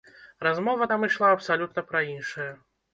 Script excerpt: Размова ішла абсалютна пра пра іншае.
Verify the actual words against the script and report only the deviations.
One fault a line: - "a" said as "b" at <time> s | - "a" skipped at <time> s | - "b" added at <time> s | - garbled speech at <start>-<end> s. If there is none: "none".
- "там" added at 0.9 s
- "пра" skipped at 2.1 s